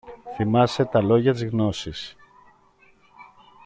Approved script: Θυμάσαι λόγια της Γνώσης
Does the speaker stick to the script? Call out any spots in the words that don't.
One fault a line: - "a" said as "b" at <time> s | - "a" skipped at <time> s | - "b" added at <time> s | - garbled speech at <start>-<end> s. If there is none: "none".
- "τα" added at 0.8 s